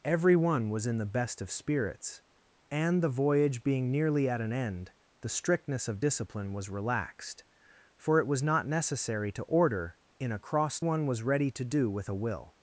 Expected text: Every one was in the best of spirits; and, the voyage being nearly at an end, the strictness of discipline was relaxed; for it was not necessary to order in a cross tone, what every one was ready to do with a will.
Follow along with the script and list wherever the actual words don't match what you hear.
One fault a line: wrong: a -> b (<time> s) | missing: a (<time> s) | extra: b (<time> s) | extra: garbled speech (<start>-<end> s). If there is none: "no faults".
missing: tone what every (10.8 s)